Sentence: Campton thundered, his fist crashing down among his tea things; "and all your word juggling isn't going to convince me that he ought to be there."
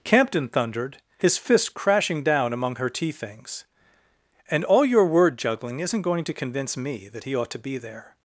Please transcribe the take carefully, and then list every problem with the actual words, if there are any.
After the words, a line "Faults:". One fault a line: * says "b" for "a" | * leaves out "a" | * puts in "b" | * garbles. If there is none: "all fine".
Campton thundered, his fist crashing down among her tea things; "and all your word juggling isn't going to convince me that he ought to be there."
Faults:
* says "her" for "his"